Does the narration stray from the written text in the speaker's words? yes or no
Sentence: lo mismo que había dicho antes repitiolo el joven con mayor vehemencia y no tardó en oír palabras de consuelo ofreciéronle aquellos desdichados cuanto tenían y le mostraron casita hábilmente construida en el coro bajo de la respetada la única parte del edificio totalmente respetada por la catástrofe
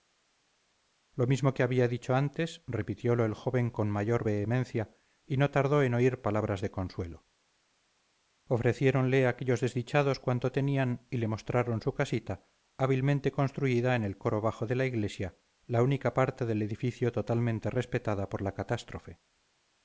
yes